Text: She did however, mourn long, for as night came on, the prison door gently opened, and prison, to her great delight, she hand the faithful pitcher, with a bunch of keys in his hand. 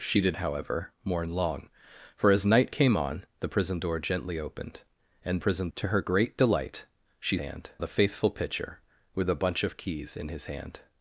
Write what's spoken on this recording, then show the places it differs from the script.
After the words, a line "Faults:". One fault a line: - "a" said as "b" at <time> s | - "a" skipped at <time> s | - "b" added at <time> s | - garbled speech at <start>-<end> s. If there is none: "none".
She did however, mourn long, for as night came on, the prison door gently opened, and prison, to her great delight, she hand the faithful pitcher, with a bunch of keys in his hand.
Faults:
none